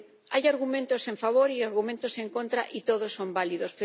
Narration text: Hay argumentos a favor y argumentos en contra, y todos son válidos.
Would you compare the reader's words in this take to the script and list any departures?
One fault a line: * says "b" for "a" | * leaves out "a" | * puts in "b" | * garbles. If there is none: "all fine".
all fine